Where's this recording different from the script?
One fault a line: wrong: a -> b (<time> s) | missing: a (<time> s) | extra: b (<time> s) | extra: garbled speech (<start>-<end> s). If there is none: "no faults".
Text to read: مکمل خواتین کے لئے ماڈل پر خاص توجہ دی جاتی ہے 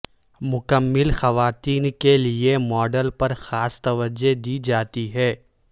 no faults